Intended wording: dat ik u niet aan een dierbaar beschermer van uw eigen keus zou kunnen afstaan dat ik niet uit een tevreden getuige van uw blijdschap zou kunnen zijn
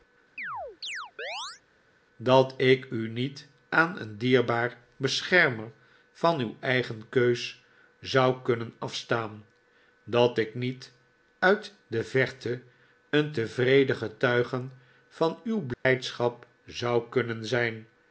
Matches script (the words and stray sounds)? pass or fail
fail